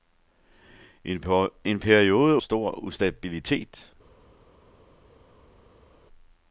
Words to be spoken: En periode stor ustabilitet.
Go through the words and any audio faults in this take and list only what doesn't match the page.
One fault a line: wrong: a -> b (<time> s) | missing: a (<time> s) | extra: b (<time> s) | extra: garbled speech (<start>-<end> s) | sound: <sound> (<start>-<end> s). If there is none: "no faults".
no faults